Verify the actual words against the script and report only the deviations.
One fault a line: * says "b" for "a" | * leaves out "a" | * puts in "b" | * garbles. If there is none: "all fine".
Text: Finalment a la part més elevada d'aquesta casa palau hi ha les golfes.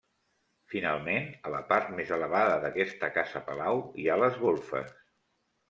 all fine